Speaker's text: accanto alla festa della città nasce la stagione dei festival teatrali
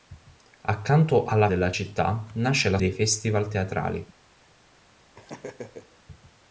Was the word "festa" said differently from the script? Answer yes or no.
yes